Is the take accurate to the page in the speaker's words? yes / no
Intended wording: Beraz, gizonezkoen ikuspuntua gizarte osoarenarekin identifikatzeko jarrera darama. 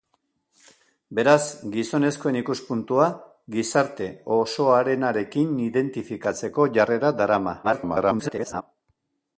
no